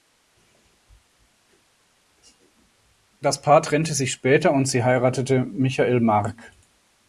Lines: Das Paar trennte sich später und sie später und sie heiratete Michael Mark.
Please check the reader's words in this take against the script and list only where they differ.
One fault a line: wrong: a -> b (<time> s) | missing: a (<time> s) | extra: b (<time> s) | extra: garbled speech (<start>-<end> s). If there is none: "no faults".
missing: später und sie (4.8 s)